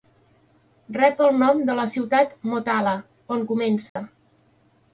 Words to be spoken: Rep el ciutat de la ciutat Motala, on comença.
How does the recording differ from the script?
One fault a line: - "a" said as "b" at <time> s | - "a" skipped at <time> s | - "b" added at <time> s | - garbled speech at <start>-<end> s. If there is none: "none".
- "ciutat" said as "nom" at 1.4 s